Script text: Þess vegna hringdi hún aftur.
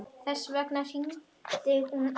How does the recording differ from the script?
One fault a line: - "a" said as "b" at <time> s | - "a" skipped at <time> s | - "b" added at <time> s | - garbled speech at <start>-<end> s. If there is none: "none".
none